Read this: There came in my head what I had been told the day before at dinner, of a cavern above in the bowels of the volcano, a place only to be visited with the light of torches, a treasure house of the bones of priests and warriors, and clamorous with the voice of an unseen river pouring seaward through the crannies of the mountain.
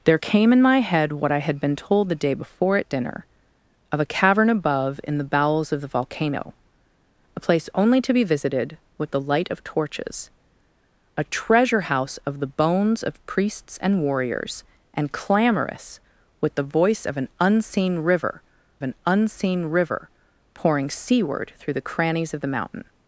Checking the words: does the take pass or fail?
fail